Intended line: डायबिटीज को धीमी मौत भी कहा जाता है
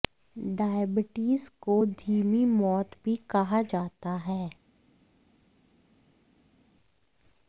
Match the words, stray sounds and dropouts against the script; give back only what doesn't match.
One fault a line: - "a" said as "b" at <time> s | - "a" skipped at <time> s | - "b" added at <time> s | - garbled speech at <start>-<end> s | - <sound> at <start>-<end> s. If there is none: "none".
none